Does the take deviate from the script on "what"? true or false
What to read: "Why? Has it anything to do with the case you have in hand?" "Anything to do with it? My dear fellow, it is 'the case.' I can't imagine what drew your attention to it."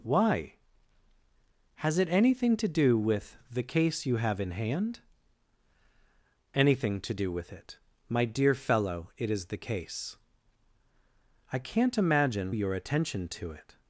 true